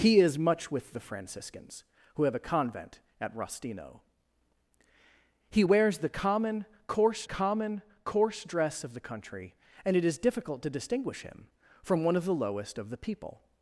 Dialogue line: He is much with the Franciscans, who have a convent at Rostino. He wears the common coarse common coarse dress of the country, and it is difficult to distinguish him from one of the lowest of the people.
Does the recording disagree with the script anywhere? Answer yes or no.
no